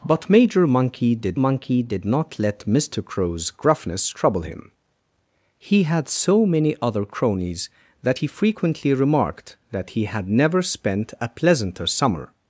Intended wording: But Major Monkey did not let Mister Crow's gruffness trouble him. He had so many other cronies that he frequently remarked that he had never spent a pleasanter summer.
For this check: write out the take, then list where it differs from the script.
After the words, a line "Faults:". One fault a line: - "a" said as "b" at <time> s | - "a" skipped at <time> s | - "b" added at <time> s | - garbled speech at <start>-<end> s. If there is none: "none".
But Major Monkey did Monkey did not let Mister Crow's gruffness trouble him. He had so many other cronies that he frequently remarked that he had never spent a pleasanter summer.
Faults:
- "Monkey did" added at 1.3 s